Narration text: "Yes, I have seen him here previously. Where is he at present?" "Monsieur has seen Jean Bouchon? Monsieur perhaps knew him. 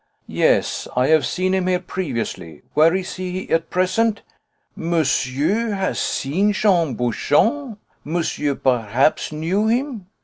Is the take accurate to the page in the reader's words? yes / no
yes